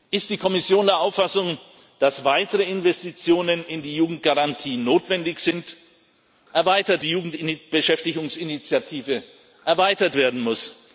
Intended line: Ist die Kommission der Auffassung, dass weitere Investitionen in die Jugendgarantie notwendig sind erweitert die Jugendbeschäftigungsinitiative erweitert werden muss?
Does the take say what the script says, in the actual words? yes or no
yes